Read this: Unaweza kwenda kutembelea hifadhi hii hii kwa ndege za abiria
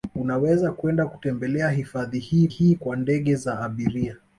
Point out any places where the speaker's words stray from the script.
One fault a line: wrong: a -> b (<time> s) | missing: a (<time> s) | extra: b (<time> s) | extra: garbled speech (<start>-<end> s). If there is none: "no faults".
no faults